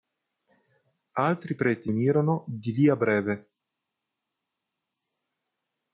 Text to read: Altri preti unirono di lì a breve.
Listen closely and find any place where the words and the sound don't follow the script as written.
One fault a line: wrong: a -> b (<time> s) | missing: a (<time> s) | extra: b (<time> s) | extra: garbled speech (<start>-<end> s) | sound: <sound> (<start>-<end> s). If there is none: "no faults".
no faults